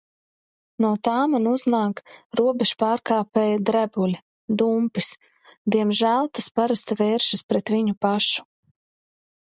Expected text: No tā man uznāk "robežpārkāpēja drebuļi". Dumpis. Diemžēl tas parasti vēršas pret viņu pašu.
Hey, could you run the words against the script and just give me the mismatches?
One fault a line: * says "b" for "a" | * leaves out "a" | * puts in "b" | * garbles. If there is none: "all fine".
all fine